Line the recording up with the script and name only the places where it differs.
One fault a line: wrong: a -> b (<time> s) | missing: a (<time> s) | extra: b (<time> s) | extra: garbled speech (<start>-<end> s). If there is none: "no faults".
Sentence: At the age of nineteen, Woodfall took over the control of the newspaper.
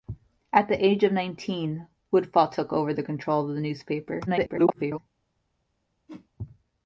extra: garbled speech (4.3-5.0 s)